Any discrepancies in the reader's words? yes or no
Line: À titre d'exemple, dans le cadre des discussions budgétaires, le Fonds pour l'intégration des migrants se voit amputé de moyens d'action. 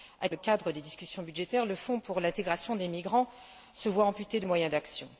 yes